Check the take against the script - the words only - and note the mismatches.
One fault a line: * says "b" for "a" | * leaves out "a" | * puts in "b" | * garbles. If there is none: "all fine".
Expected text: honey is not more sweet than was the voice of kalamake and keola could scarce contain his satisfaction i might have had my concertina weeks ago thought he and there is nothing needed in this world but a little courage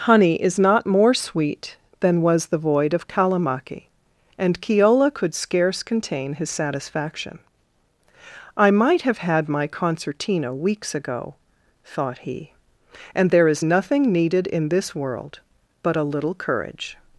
* says "void" for "voice"